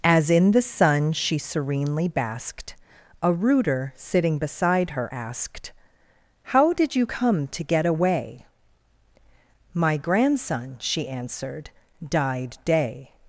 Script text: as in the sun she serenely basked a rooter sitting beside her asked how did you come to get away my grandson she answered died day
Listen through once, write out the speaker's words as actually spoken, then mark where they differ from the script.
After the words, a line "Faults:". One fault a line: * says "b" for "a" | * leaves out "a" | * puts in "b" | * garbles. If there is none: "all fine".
as in the sun she serenely basked a rooter sitting beside her asked how did you come to get away my grandson she answered died day
Faults:
all fine